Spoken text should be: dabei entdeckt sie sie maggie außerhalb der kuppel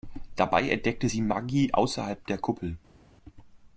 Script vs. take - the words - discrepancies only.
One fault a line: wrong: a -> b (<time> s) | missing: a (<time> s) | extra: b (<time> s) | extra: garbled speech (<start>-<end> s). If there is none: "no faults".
missing: sie (1.2 s)